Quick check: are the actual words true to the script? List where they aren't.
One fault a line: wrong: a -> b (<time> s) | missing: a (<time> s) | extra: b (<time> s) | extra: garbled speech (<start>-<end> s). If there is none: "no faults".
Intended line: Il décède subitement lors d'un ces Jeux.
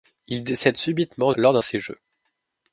no faults